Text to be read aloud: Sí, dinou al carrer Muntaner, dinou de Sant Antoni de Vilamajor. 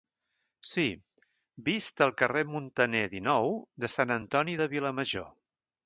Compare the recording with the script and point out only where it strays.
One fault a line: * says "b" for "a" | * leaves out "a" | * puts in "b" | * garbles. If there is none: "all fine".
* says "vist" for "dinou"